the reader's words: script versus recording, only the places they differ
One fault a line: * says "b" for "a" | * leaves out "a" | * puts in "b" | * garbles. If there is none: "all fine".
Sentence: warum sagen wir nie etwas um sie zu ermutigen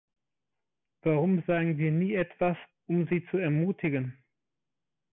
all fine